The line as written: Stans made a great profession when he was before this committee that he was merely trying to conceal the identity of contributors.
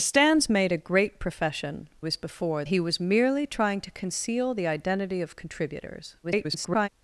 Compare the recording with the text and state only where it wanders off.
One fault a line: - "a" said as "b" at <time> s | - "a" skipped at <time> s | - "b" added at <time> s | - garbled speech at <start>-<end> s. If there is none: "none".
- "when he" skipped at 1.9 s
- "this committee that" skipped at 2.6 s
- garbled speech at 6.2-6.9 s